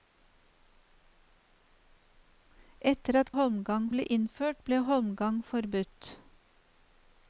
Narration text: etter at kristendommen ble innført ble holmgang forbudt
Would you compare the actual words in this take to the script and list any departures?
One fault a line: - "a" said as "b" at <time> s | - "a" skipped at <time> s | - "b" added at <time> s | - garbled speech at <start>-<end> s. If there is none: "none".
- "kristendommen" said as "holmgang" at 3.4 s